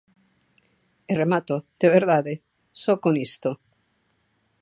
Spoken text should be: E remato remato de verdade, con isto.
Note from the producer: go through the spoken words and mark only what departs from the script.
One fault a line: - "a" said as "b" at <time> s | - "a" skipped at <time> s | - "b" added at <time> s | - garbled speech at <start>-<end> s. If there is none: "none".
- "remato" skipped at 1.6 s
- "só" added at 2.8 s